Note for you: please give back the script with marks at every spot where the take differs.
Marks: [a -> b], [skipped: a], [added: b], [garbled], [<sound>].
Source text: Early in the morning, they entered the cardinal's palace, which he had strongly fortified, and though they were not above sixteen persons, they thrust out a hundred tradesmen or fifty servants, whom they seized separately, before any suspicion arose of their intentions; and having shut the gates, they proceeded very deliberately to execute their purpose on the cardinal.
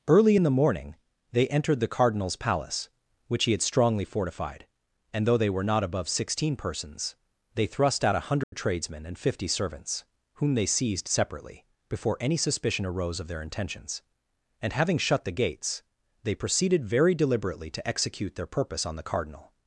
Early in the morning, they entered the cardinal's palace, which he had strongly fortified, and though they were not above sixteen persons, they thrust out a hundred [dropout] tradesmen [or -> and] fifty servants, whom they seized separately, before any suspicion arose of their intentions; and having shut the gates, they proceeded very deliberately to execute their purpose on the cardinal.